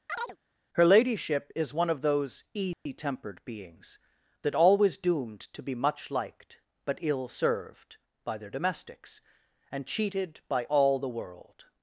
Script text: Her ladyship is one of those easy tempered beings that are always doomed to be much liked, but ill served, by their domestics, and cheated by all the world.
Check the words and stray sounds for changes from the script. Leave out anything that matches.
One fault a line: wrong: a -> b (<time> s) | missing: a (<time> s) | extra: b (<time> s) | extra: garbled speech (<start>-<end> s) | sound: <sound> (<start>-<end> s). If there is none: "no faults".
sound: chirp (0.1-0.4 s)
sound: dropout (2.7-2.9 s)
missing: are (4.5 s)